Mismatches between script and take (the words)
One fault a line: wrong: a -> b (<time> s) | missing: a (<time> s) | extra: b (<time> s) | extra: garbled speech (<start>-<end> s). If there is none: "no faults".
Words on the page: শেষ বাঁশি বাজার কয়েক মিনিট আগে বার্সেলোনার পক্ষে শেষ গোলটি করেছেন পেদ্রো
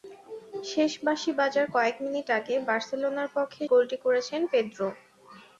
missing: শেষ (3.6 s)